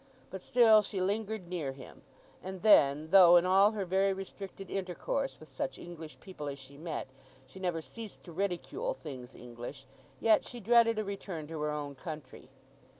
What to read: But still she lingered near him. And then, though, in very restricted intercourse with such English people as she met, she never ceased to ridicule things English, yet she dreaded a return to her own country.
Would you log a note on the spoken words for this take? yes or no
yes